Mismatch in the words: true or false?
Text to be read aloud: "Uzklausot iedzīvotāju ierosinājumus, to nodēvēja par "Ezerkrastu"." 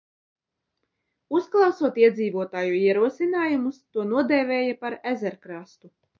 false